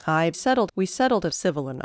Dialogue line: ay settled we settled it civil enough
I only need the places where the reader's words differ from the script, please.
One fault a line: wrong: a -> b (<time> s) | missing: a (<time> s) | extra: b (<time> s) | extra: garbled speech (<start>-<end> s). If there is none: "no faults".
no faults